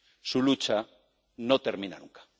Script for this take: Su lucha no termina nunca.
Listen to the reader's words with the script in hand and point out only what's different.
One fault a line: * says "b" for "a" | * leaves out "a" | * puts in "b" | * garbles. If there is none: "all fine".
all fine